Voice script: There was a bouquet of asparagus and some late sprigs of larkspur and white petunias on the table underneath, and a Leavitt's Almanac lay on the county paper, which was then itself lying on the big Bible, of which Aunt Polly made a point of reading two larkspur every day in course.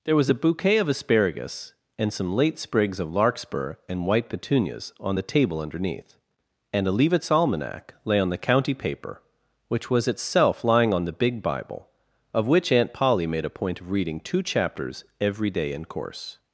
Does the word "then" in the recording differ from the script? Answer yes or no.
yes